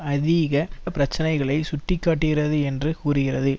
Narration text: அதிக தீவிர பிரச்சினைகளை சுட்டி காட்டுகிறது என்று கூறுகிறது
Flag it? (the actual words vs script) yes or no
yes